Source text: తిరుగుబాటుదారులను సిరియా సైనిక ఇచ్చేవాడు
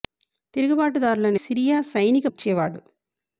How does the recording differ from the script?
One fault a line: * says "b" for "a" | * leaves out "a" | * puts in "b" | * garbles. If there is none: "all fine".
all fine